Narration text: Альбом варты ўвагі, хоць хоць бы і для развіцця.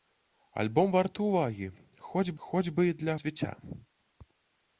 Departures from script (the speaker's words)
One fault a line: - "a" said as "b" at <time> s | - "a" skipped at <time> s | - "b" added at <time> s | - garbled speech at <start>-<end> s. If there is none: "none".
none